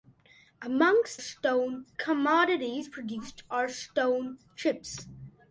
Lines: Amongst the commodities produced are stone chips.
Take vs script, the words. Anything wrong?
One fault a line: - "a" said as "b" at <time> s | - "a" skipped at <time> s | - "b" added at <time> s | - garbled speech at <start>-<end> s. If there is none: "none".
- "the" said as "stone" at 1.2 s